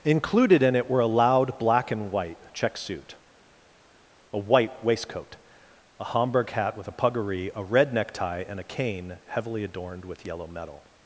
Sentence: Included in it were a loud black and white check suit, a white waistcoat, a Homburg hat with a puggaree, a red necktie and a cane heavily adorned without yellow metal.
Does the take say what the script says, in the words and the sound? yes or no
no